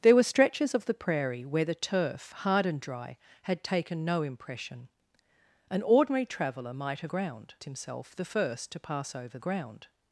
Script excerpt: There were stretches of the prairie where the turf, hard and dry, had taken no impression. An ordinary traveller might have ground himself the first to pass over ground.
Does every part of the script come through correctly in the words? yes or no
yes